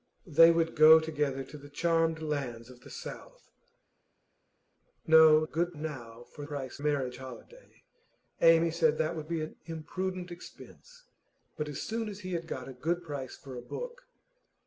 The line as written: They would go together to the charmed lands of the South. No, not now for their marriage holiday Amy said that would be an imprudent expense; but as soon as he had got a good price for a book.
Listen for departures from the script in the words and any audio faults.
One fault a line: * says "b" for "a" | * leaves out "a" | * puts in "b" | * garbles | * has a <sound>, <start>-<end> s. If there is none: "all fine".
* says "good" for "not"
* says "price" for "their"